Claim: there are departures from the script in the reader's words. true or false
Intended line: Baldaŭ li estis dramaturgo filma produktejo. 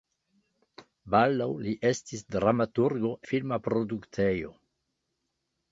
false